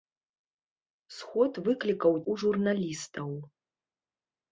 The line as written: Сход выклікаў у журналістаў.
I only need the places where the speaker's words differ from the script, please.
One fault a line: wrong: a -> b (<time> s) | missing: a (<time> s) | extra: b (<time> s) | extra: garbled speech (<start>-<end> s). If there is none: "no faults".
no faults